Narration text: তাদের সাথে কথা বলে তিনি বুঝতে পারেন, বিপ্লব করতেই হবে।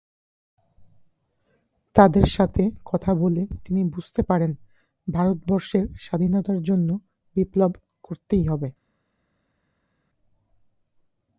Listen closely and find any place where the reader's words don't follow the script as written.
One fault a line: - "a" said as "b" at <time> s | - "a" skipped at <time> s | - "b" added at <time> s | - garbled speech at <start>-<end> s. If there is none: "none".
- "ভারতবর্ষের স্বাধীনতার জন্য" added at 5.1 s